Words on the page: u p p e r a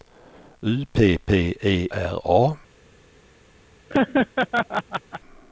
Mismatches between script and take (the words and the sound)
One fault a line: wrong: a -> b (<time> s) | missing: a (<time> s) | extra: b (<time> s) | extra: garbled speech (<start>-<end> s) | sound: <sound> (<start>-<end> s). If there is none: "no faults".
sound: laugh (3.9-5.2 s)